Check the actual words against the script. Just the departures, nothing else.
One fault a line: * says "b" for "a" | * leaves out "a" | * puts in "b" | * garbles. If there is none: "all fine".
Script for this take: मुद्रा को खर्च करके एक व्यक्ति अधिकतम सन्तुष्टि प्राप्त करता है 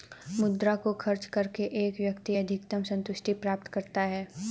all fine